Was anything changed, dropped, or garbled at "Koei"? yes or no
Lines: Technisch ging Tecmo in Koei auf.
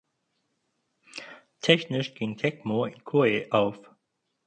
no